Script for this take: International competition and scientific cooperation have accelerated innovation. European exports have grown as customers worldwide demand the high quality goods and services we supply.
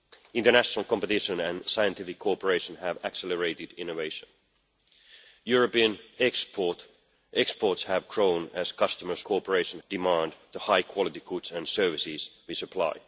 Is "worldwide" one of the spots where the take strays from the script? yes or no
yes